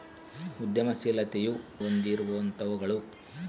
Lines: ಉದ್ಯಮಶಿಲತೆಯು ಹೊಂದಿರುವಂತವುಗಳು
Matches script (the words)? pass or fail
pass